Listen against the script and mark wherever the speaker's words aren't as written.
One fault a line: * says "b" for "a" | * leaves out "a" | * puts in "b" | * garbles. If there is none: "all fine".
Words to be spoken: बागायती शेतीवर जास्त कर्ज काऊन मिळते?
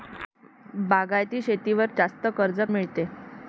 * leaves out "काऊन"